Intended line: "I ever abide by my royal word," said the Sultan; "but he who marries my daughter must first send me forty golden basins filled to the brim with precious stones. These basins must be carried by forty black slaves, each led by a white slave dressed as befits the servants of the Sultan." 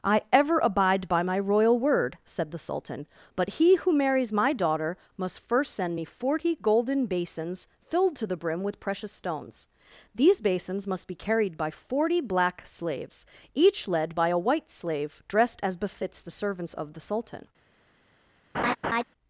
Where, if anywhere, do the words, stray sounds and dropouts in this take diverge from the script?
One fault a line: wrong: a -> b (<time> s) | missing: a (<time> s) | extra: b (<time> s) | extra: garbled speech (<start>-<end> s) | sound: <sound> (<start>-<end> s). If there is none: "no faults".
sound: laugh (18.5-19.0 s)